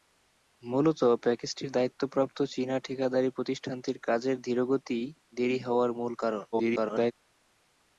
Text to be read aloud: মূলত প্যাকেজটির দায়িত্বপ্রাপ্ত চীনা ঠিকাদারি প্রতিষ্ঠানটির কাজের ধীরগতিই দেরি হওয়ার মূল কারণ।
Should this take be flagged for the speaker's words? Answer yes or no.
yes